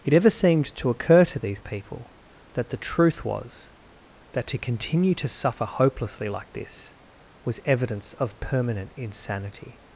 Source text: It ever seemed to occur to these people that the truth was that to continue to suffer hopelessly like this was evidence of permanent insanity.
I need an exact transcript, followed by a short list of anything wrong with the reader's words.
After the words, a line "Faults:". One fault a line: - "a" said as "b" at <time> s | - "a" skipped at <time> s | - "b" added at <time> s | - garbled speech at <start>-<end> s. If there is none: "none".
It ever seemed to occur to these people that the truth was that to continue to suffer hopelessly like this was evidence of permanent insanity.
Faults:
none